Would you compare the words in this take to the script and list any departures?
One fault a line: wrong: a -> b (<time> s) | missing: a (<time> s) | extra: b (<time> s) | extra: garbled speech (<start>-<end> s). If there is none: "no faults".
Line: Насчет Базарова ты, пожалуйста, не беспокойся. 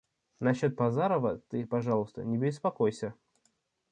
no faults